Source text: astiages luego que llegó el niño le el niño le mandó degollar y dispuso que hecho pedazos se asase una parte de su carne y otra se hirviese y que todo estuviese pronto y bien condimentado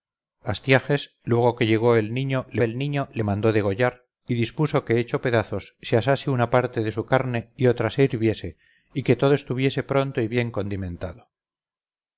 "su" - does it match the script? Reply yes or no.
yes